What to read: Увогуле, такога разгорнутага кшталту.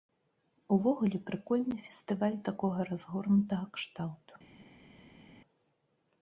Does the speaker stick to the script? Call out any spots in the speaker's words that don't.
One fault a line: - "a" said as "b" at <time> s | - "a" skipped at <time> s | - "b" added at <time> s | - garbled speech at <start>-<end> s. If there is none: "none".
- "прыкольны фестываль" added at 1.3 s